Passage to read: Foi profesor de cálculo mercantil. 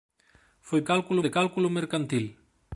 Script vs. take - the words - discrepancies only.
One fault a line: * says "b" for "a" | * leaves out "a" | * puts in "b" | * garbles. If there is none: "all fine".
* says "cálculo" for "profesor"